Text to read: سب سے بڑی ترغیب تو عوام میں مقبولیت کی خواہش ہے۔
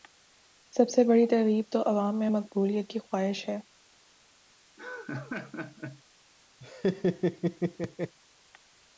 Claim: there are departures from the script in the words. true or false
false